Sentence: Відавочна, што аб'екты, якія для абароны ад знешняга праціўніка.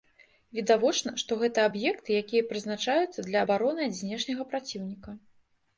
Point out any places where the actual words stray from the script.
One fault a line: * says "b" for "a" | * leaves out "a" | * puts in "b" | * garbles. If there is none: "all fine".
* puts in "гэта"
* puts in "прызначаюцца"